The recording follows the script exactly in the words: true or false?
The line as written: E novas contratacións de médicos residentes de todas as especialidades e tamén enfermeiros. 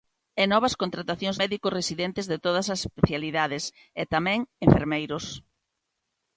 false